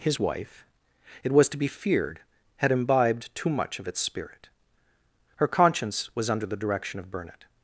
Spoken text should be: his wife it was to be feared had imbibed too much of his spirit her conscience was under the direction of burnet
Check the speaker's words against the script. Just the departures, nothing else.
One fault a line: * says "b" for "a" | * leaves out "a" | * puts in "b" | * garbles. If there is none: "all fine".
* says "its" for "his"